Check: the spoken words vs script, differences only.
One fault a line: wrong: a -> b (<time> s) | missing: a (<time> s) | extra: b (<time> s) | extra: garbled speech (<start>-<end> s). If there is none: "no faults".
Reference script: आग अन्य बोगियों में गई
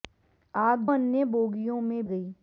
no faults